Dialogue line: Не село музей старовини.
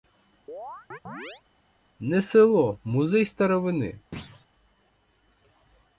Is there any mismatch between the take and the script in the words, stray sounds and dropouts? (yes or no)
yes